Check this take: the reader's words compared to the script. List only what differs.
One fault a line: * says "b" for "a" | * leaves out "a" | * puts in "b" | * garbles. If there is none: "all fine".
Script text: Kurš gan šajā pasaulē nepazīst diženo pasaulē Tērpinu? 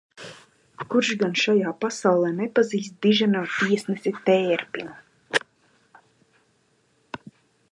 * says "tiesnesi" for "pasaulē"